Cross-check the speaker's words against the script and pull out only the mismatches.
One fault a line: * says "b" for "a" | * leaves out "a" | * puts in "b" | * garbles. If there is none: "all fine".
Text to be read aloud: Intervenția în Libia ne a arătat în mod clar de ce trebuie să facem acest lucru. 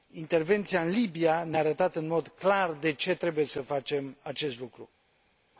all fine